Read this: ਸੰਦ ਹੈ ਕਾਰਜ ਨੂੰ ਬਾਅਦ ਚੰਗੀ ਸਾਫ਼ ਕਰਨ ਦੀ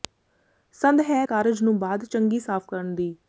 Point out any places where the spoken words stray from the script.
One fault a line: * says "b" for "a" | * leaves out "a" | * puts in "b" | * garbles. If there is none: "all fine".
all fine